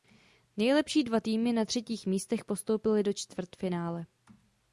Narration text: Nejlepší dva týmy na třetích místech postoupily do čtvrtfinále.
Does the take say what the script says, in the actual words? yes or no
yes